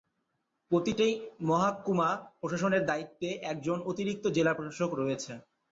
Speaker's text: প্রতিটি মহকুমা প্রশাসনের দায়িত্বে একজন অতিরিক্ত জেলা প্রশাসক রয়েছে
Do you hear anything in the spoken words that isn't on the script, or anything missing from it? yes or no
no